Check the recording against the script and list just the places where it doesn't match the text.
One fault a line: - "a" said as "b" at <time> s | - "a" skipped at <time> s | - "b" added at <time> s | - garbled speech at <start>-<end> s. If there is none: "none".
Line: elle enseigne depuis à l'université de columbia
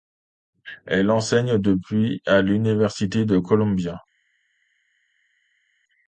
none